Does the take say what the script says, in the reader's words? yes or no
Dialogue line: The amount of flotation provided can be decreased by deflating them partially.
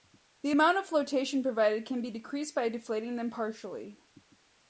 yes